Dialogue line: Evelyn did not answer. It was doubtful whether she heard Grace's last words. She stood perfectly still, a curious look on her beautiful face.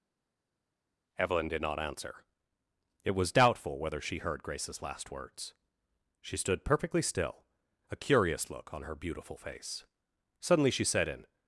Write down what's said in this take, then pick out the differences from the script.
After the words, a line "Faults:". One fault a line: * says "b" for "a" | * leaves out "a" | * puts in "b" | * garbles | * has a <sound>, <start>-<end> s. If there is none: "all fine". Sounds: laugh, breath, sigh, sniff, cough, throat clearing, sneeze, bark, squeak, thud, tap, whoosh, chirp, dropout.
Evelyn did not answer. It was doubtful whether she heard Grace's last words. She stood perfectly still, a curious look on her beautiful face. Suddenly she said in
Faults:
* puts in "Suddenly she said in"